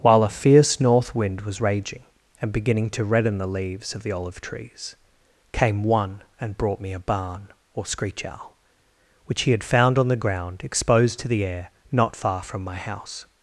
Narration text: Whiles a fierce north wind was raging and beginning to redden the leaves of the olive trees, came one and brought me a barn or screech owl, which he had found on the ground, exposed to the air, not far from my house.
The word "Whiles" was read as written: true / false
false